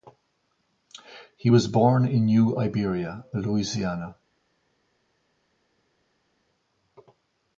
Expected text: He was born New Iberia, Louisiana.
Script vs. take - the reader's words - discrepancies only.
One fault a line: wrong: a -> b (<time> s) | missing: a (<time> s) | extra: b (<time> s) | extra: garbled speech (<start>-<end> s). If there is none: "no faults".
extra: in (2.1 s)